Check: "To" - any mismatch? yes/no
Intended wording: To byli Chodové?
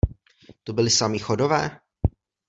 no